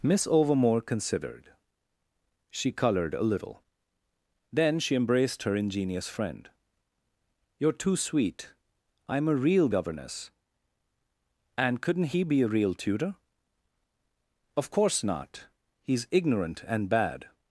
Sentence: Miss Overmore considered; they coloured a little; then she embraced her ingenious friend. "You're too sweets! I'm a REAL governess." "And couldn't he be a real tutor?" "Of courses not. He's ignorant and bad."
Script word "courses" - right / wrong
wrong